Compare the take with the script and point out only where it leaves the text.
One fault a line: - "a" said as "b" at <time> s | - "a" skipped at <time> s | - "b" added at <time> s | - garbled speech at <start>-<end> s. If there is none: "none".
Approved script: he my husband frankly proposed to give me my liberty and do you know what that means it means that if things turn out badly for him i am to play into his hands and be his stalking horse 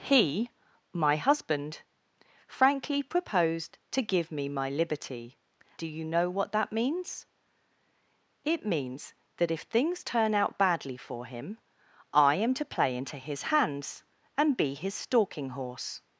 - "and" skipped at 5.4 s